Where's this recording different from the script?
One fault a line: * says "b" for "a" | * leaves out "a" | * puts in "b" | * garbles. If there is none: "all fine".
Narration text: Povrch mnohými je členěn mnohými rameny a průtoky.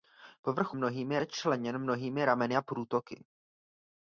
all fine